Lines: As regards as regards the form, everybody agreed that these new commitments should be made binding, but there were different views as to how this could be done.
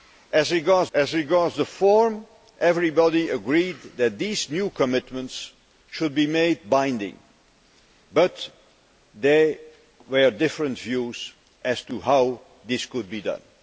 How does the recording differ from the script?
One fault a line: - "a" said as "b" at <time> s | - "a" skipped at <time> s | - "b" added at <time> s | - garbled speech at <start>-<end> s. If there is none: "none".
none